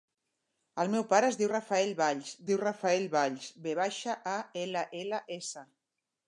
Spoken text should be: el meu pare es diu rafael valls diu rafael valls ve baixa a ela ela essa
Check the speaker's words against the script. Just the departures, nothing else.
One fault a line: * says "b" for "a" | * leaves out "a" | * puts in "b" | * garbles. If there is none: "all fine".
all fine